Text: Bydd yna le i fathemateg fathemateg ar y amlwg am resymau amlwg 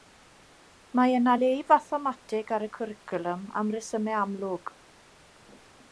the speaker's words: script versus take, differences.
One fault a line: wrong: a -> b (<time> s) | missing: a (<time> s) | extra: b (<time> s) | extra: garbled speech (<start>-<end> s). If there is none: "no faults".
wrong: Bydd -> Mae (1.0 s)
missing: fathemateg (2.5 s)
wrong: amlwg -> cwricwlwm (2.8 s)